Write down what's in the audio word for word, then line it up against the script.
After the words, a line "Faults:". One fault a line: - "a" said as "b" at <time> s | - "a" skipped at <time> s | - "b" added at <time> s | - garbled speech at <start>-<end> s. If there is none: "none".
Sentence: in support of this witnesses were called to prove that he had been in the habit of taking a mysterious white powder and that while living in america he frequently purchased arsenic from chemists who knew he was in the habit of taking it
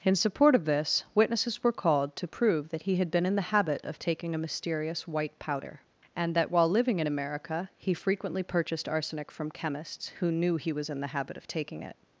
in support of this witnesses were called to prove that he had been in the habit of taking a mysterious white powder and that while living in america he frequently purchased arsenic from chemists who knew he was in the habit of taking it
Faults:
none